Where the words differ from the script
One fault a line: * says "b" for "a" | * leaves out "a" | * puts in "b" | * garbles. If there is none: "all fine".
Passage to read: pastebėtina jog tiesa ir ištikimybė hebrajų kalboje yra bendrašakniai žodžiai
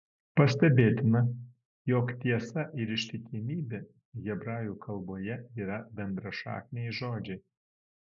all fine